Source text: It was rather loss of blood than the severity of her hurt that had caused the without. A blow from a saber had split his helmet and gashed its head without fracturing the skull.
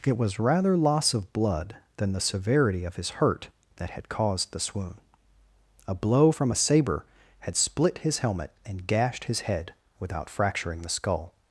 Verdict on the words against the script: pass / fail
fail